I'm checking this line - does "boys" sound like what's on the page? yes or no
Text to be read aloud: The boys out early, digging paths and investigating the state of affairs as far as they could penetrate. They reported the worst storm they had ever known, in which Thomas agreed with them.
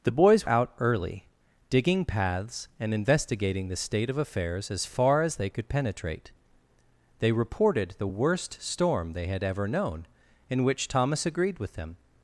yes